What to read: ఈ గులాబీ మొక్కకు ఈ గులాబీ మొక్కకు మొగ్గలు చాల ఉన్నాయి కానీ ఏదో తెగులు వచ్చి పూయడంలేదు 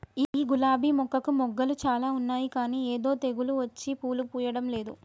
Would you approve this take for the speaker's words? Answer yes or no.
no